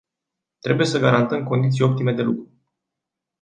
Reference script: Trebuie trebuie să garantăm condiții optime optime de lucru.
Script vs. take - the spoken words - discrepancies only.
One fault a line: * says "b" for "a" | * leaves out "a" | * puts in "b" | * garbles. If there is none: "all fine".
* leaves out "trebuie"
* leaves out "optime"